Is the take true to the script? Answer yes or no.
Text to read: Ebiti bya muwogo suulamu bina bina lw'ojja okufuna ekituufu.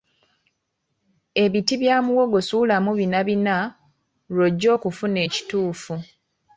yes